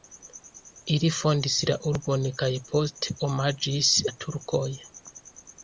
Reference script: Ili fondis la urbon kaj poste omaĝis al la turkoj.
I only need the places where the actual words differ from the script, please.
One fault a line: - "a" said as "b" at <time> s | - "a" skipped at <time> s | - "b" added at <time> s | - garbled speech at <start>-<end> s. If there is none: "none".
- "al" skipped at 3.9 s